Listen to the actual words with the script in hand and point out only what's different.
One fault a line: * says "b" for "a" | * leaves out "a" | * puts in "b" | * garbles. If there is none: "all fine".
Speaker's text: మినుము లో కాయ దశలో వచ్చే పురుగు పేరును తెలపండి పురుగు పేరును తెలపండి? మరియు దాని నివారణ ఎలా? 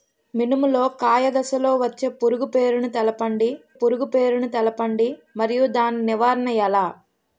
all fine